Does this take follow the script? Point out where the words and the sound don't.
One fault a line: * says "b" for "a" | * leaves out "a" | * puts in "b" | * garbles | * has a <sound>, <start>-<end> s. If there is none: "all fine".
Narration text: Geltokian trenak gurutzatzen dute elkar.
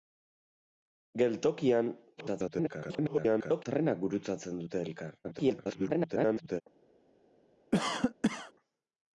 * garbles
* garbles
* has a cough, 7.7-8.5 s